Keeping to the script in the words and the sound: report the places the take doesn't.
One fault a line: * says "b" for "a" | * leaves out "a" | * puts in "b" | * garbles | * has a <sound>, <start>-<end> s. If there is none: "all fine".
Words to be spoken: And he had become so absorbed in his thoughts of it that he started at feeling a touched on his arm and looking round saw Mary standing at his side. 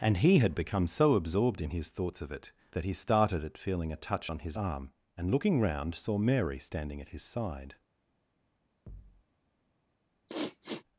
* says "touch" for "touched"
* has a thud, 8.9-9.2 s
* has a sniff, 10.3-10.8 s